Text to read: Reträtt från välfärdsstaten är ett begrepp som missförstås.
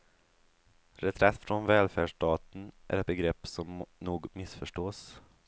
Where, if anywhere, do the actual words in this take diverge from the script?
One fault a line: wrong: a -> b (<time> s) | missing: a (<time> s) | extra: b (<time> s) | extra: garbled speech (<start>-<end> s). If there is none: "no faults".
extra: nog (4.0 s)